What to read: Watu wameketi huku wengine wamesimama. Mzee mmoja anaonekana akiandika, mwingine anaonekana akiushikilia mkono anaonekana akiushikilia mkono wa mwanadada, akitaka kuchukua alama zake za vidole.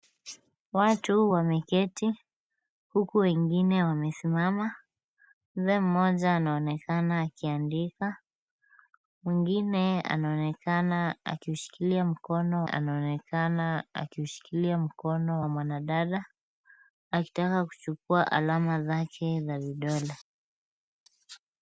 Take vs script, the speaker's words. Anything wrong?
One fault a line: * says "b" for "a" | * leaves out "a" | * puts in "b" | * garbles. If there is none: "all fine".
all fine